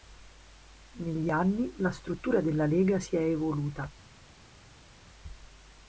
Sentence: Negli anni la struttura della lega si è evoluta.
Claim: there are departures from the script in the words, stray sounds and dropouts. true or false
false